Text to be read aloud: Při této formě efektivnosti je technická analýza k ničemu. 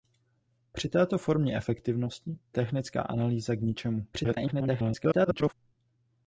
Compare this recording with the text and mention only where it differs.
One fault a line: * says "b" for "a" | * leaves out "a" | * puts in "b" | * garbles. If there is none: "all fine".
* leaves out "je"
* garbles